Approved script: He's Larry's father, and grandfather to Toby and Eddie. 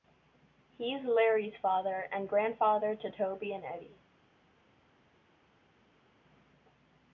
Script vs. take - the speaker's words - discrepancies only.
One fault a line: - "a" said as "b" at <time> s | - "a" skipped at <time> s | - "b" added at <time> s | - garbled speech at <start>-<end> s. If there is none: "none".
none